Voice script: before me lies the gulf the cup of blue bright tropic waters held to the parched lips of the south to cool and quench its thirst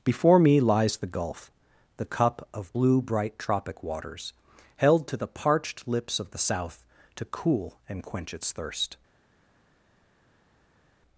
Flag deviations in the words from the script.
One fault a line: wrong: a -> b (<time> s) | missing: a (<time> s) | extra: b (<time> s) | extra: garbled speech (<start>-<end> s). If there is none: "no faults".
no faults